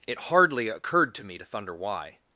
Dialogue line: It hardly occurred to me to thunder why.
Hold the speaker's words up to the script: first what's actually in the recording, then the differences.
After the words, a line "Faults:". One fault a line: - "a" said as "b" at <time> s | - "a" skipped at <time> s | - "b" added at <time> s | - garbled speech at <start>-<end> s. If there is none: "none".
It hardly occurred to me to thunder why.
Faults:
none